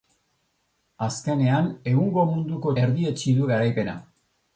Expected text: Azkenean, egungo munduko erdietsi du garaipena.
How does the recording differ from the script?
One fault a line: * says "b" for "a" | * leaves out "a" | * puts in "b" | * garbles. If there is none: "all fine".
all fine